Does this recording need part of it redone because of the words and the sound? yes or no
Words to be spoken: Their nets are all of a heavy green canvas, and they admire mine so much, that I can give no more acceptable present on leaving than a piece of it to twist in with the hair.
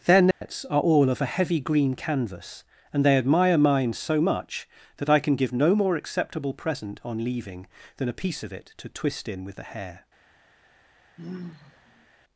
yes